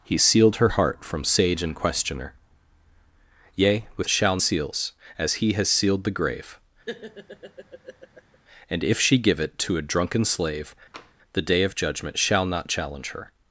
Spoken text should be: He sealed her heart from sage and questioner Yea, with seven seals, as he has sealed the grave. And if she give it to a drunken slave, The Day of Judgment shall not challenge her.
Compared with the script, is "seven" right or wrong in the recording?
wrong